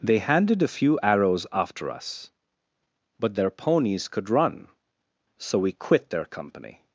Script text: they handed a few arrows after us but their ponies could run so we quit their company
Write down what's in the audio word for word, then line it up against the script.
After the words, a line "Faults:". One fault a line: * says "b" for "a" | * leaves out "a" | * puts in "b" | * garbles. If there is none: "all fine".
they handed a few arrows after us but their ponies could run so we quit their company
Faults:
all fine